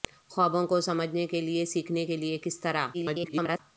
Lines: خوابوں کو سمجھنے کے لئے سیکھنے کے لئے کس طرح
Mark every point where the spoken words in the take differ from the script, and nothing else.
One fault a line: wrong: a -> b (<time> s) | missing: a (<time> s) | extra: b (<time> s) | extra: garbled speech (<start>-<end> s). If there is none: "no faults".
extra: garbled speech (2.9-3.6 s)